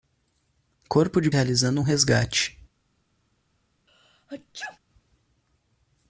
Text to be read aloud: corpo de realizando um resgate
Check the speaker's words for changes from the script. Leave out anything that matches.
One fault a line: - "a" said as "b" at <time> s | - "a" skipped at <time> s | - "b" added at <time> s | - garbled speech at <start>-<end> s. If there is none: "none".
none